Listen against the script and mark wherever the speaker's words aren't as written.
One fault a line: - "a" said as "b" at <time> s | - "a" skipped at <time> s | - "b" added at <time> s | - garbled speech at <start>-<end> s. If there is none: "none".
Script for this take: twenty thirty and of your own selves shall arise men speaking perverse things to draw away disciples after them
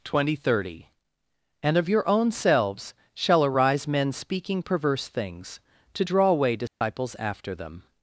none